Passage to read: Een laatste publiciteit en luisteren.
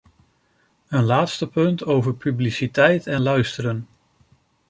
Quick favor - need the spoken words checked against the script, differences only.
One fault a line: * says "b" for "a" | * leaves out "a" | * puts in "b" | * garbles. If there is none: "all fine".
* puts in "punt over"